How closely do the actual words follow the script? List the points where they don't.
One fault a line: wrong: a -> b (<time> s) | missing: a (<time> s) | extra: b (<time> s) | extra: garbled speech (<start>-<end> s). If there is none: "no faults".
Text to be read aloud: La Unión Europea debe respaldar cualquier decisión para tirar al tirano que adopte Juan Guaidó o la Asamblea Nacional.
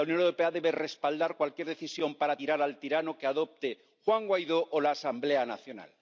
no faults